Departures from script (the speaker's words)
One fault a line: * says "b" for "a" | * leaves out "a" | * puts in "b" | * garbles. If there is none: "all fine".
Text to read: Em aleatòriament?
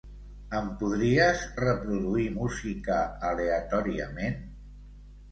* puts in "podries reproduir música"